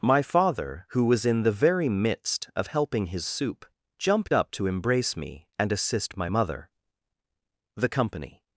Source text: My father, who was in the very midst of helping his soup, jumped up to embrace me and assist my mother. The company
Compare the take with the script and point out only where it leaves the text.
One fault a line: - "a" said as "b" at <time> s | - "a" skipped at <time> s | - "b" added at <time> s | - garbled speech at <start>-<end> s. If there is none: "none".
none